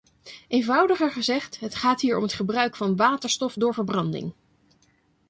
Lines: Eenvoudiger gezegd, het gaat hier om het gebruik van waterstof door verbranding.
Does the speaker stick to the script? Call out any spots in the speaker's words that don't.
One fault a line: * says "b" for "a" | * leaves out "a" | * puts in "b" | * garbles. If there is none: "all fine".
all fine